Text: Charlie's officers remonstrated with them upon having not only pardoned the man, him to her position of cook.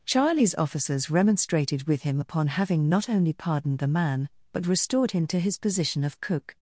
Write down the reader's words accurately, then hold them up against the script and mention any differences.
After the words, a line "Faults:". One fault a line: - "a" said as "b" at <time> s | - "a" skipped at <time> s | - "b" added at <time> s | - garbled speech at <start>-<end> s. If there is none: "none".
Charlie's officers remonstrated with him upon having not only pardoned the man, but restored him to his position of cook.
Faults:
- "them" said as "him" at 2.0 s
- "but restored" added at 4.5 s
- "her" said as "his" at 5.4 s